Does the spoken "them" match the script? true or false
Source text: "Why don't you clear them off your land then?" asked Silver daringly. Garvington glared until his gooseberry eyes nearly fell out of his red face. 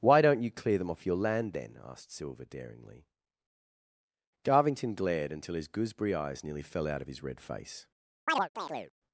true